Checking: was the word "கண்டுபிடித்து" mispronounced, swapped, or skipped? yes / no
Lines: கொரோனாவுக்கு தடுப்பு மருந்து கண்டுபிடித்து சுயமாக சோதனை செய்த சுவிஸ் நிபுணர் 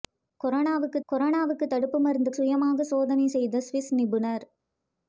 yes